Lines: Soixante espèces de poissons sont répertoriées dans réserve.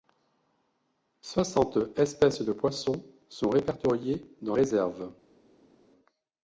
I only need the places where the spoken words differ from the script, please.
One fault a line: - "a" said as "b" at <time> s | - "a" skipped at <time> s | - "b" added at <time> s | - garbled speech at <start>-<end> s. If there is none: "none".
none